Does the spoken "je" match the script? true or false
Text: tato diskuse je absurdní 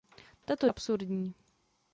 false